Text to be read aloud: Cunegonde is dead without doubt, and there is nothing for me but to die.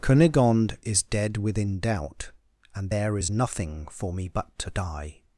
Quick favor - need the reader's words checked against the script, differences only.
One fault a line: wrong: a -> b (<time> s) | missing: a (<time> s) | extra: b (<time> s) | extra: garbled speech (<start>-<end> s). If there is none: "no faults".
wrong: without -> within (1.4 s)